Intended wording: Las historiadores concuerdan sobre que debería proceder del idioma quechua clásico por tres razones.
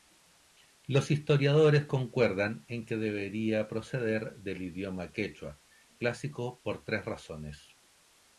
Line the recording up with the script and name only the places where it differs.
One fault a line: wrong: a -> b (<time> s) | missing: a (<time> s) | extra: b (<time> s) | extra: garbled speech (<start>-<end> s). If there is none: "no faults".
wrong: Las -> Los (0.9 s)
wrong: sobre -> en (2.7 s)